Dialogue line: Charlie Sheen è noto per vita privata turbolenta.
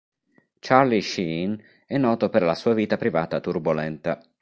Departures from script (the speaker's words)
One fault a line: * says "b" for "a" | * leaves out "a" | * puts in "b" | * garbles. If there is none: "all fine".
* puts in "la sua"